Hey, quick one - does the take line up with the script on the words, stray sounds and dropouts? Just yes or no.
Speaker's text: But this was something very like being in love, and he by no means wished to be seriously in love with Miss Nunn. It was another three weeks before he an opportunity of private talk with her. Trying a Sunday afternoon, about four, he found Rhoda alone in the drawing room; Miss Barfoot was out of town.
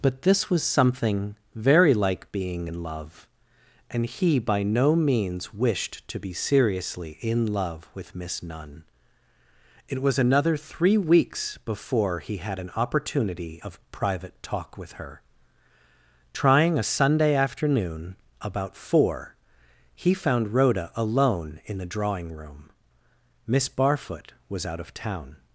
no